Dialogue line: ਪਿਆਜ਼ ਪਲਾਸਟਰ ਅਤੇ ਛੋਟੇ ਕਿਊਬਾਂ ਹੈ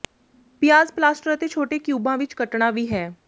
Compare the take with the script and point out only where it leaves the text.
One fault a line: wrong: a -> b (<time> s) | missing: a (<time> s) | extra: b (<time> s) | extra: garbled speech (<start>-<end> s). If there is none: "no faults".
extra: ਵਿੱਚ ਕੱਟਣਾ ਵੀ (2.2 s)